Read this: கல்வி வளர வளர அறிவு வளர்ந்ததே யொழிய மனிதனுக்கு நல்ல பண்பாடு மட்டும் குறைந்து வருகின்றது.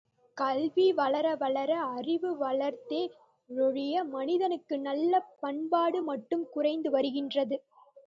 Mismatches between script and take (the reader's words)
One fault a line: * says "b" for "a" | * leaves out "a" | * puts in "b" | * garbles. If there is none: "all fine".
all fine